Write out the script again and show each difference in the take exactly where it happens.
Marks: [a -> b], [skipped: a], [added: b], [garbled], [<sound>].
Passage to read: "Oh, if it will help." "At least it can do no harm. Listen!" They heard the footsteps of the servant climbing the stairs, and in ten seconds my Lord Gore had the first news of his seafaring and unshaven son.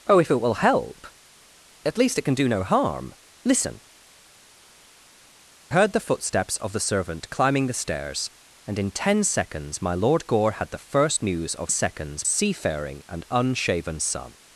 "Oh, if it will help." "At least it can do no harm. Listen!" [skipped: They] heard the footsteps of the servant climbing the stairs, and in ten seconds my Lord Gore had the first news of [his -> seconds] seafaring and unshaven son.